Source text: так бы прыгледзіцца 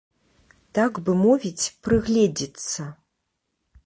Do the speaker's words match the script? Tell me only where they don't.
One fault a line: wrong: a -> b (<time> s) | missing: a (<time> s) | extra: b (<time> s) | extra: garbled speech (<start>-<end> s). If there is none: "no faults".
extra: мовіць (1.2 s)